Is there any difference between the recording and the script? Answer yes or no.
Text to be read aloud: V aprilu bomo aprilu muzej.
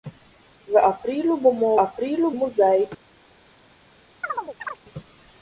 no